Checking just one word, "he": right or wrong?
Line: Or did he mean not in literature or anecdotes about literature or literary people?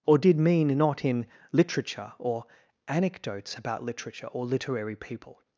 wrong